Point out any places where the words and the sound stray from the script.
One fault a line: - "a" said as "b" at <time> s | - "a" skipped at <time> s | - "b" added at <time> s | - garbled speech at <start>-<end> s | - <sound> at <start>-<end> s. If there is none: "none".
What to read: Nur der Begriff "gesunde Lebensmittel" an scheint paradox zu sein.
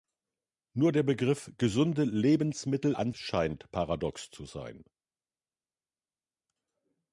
none